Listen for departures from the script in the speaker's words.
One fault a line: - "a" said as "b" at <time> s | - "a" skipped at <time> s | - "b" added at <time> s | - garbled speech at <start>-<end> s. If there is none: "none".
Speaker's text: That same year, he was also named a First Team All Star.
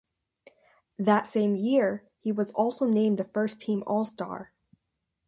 none